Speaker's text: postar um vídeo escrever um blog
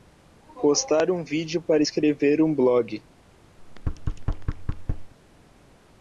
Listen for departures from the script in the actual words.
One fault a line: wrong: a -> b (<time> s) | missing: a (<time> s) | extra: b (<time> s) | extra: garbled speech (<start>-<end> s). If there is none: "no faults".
extra: para (1.6 s)